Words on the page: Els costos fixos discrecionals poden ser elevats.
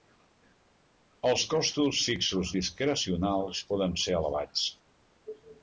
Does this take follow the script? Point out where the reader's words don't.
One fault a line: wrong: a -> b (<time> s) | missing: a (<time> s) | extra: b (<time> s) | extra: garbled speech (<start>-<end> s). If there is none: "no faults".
no faults